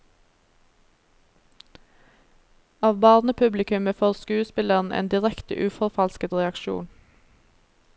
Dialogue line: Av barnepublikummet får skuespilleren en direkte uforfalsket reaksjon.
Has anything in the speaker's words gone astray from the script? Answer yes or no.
no